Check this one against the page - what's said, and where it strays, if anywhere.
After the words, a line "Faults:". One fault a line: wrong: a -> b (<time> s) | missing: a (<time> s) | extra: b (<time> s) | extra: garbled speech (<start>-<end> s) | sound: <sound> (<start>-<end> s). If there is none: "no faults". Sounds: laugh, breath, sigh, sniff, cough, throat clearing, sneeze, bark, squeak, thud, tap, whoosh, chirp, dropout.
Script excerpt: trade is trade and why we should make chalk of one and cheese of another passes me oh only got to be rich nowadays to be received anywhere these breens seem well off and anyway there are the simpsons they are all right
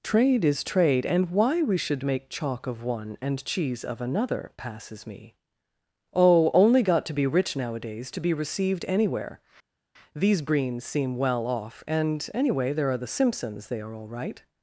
trade is trade and why we should make chalk of one and cheese of another passes me oh only got to be rich nowadays to be received anywhere these breens seem well off and anyway there are the simpsons they are all right
Faults:
no faults